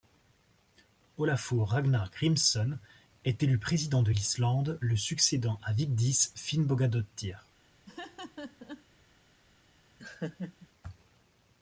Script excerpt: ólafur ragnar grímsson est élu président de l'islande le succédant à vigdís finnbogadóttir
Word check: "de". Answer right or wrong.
right